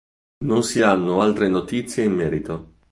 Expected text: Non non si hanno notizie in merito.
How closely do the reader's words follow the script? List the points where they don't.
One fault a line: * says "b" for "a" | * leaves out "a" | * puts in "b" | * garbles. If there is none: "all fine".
* leaves out "non"
* puts in "altre"